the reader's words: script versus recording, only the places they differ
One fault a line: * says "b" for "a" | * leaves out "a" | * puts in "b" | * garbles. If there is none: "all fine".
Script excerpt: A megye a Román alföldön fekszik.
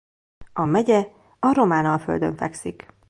all fine